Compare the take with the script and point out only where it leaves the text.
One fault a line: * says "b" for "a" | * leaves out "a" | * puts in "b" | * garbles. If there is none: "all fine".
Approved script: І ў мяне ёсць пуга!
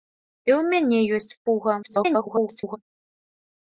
* garbles